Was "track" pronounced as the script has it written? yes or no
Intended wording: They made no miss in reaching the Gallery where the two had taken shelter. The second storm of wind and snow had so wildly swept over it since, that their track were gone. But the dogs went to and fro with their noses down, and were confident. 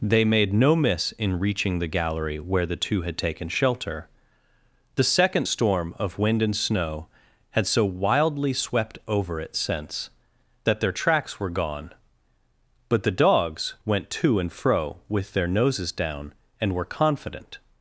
no